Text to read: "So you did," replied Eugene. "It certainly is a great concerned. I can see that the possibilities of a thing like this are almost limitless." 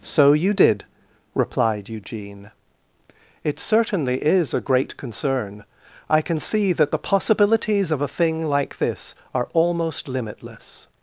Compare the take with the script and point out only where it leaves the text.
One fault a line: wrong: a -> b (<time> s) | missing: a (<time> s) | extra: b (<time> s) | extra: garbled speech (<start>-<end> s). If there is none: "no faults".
wrong: concerned -> concern (5.0 s)